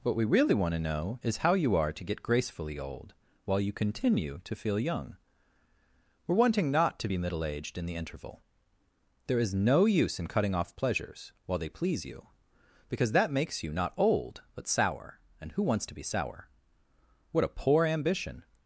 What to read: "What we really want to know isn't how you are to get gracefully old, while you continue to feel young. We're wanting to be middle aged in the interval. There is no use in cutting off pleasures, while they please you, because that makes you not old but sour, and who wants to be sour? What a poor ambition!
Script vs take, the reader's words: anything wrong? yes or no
yes